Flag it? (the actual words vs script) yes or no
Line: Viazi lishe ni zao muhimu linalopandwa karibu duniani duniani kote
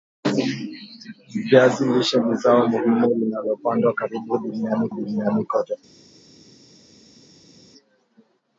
no